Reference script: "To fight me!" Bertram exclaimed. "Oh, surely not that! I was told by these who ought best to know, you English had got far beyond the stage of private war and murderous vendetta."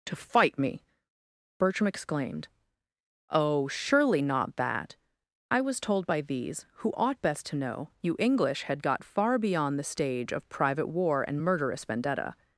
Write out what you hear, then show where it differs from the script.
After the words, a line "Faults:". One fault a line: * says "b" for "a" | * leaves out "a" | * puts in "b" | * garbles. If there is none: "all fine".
"To fight me!" Bertram exclaimed. "Oh, surely not that! I was told by these who ought best to know, you English had got far beyond the stage of private war and murderous vendetta."
Faults:
all fine